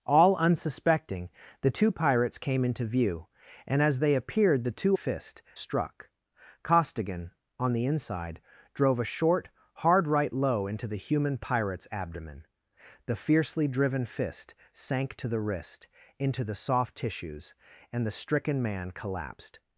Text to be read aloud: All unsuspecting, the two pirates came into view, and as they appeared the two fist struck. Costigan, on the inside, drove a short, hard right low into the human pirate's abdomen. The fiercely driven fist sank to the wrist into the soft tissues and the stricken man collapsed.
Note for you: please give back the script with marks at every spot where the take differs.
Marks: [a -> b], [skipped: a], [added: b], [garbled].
All unsuspecting, the two pirates came into view, and as they appeared the two fist struck. Costigan, on the inside, drove a short, hard right low into the human pirate's abdomen. The fiercely driven fist sank to the wrist into the soft tissues and the stricken man collapsed.